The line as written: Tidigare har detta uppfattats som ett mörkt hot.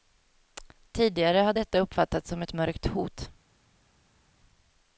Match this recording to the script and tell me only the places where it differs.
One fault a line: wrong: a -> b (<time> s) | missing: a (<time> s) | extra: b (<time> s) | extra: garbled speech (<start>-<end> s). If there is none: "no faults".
no faults